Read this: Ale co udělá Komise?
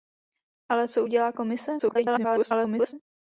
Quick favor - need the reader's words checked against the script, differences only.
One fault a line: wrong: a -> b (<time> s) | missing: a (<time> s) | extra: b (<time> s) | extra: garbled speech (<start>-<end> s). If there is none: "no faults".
extra: garbled speech (1.8-2.9 s)